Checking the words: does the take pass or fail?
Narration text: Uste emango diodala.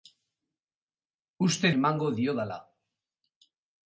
pass